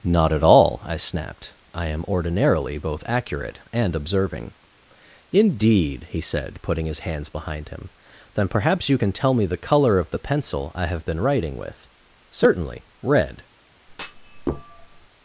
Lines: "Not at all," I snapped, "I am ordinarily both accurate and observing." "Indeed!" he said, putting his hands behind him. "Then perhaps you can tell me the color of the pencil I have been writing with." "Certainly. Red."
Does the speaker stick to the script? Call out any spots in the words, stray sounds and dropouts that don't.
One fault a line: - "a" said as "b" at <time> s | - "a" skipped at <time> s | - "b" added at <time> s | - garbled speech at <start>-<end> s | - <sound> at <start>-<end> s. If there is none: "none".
- thud at 13.9-15.1 s